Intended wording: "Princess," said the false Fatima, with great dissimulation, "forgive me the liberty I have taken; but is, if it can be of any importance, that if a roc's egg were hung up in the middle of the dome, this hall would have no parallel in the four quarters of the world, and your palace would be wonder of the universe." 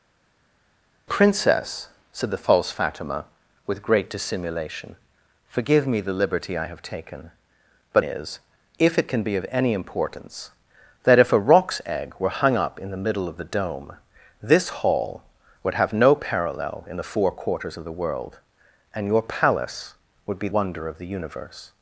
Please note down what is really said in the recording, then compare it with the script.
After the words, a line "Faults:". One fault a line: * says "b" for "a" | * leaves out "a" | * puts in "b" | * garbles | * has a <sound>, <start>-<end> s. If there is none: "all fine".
"Princess," said the false Fatima, with great dissimulation, "forgive me the liberty I have taken; but is, if it can be of any importance, that if a roc's egg were hung up in the middle of the dome, this hall would have no parallel in the four quarters of the world, and your palace would be wonder of the universe."
Faults:
all fine